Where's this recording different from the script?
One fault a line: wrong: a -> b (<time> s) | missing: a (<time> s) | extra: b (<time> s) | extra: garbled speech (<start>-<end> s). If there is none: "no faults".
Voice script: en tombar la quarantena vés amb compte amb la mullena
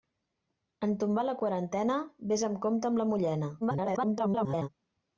extra: garbled speech (3.6-4.7 s)